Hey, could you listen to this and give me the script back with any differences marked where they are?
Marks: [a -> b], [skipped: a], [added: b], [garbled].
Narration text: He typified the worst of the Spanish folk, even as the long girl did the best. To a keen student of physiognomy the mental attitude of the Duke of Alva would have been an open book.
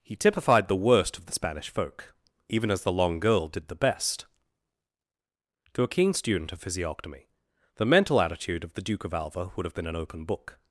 He typified the worst of the Spanish folk, even as the long girl did the best. To a keen student of physiognomy the mental attitude of the Duke of Alva would have been an open book.